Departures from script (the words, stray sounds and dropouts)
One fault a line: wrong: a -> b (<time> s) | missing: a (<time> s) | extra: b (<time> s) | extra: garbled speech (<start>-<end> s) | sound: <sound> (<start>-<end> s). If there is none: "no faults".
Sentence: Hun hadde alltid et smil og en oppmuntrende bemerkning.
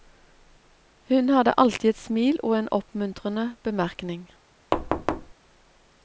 sound: thud (4.7-5.3 s)